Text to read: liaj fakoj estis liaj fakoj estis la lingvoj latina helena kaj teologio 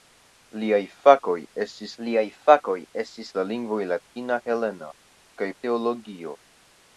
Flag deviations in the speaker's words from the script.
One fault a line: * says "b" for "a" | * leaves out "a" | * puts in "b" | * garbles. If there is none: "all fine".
all fine